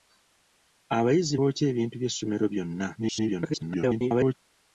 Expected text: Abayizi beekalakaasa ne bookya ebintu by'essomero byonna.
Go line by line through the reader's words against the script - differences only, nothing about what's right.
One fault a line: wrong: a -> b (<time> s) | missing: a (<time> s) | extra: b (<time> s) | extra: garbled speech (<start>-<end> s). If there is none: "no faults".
missing: beekalakaasa ne (1.4 s)
extra: garbled speech (2.9-4.4 s)